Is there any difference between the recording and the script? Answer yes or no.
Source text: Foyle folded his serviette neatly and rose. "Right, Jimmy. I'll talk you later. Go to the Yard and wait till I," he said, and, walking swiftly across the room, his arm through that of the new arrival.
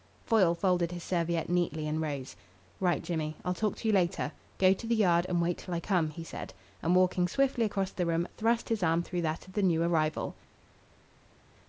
yes